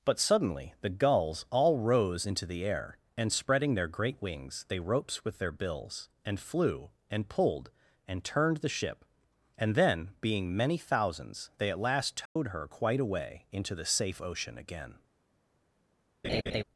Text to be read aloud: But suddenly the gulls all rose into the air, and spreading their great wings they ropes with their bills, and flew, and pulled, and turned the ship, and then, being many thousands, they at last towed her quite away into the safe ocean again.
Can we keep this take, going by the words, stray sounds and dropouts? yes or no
no